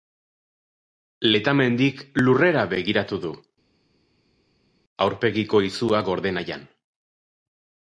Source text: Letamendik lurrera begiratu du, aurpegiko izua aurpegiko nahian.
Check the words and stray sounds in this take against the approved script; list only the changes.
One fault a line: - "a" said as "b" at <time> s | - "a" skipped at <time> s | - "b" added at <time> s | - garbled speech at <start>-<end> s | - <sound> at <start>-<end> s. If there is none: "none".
- "aurpegiko" said as "gorde" at 6.1 s